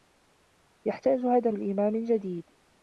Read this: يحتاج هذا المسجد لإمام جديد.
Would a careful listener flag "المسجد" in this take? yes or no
yes